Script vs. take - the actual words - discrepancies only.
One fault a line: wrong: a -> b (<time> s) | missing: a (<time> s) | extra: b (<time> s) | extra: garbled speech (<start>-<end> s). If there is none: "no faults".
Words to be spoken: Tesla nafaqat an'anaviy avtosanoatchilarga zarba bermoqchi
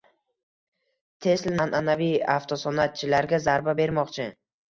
missing: nafaqat (1.6 s)